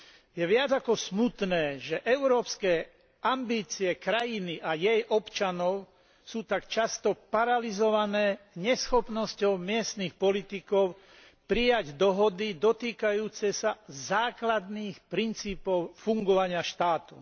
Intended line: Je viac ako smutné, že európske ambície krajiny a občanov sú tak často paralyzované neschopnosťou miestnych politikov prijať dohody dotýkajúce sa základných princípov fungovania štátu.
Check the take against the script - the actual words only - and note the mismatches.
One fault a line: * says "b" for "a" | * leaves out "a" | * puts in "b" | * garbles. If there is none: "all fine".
* puts in "jej"